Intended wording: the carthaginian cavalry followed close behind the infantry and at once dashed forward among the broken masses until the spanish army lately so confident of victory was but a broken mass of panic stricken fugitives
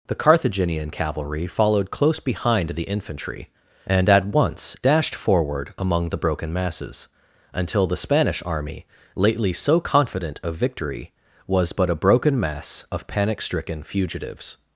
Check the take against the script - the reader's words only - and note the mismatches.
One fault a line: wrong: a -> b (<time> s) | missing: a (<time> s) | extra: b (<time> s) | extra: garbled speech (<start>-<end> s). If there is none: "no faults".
no faults